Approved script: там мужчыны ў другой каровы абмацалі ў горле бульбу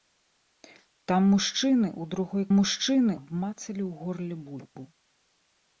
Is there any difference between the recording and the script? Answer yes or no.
yes